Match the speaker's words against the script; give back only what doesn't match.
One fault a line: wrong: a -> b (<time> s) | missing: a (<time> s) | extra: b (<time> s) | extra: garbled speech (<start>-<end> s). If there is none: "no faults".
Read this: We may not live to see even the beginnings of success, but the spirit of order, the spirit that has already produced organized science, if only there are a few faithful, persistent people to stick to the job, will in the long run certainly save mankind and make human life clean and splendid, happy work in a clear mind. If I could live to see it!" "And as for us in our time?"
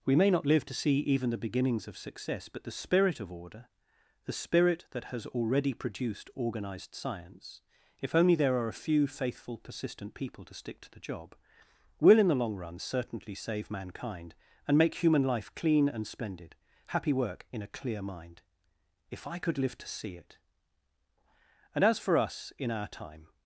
no faults